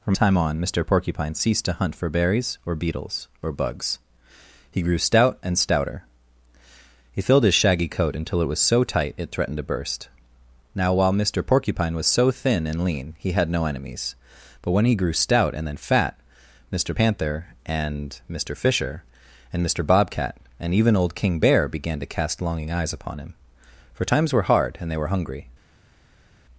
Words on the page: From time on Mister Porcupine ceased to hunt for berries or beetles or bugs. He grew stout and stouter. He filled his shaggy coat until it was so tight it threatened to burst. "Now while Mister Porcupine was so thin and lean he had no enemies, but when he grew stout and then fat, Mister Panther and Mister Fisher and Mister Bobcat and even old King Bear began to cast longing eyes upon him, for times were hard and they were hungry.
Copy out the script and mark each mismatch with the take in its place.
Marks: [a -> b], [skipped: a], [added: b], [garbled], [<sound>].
From time on Mister Porcupine ceased to hunt for berries or beetles or bugs. He grew stout and stouter. He filled his shaggy coat until it was so tight it threatened to burst. "Now while Mister Porcupine was so thin and lean he had no enemies, but when he grew stout and then fat, Mister Panther and Mister Fisher and Mister Bobcat and even old King Bear began to cast longing eyes upon him, for times were hard and they were hungry.